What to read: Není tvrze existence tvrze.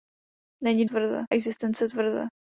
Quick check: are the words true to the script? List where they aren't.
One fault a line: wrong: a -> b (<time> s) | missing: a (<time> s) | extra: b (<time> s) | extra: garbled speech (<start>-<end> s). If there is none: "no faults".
no faults